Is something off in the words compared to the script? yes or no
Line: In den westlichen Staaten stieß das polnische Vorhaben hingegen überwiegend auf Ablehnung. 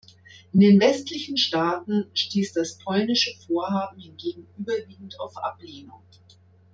no